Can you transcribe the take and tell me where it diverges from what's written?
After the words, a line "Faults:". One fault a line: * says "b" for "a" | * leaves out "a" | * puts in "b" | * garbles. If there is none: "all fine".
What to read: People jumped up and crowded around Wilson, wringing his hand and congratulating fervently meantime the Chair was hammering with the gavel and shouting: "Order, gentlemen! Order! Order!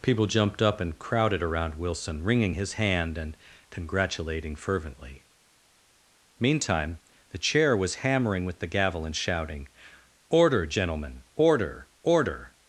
People jumped up and crowded around Wilson, wringing his hand and congratulating fervently meantime the Chair was hammering with the gavel and shouting: "Order, gentlemen! Order! Order!
Faults:
all fine